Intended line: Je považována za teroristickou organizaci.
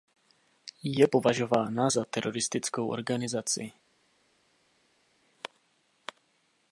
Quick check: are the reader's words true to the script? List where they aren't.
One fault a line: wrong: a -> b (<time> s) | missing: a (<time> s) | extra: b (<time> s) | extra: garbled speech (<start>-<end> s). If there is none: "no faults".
no faults